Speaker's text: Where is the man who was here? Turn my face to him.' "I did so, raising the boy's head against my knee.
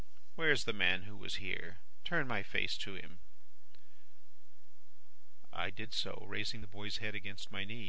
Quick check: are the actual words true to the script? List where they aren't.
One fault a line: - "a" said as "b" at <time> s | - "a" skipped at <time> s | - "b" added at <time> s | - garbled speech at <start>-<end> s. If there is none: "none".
none